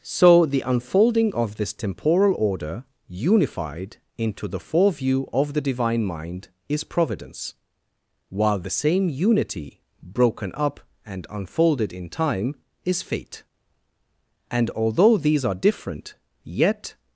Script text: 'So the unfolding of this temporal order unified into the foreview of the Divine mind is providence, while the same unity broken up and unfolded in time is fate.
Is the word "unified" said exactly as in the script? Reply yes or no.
yes